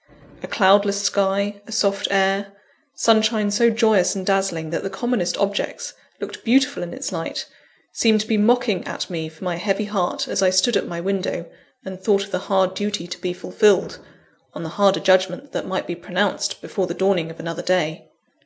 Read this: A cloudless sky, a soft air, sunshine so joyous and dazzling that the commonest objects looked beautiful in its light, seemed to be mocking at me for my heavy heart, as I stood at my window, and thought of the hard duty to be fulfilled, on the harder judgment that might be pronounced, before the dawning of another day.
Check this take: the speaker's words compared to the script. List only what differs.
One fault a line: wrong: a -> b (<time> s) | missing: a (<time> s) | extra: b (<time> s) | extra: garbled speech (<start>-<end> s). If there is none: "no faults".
no faults